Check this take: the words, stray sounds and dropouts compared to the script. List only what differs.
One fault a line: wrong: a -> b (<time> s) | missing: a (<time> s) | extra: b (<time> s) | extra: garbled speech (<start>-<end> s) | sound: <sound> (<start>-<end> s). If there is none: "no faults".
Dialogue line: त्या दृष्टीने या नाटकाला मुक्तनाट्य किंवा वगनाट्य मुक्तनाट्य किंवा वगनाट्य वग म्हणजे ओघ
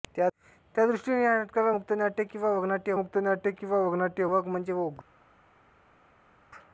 no faults